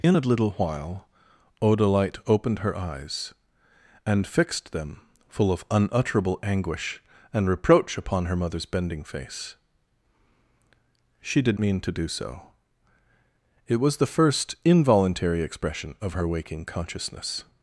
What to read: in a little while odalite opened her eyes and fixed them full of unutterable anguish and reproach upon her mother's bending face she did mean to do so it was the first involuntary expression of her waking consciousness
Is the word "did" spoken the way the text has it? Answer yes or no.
yes